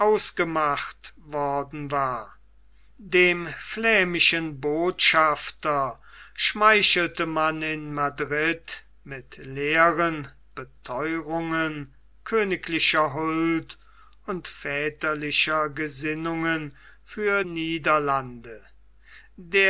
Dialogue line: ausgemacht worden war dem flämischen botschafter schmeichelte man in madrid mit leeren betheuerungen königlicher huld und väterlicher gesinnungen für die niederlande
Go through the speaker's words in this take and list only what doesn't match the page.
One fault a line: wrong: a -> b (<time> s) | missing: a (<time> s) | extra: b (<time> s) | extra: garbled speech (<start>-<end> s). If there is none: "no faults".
missing: die (17.4 s)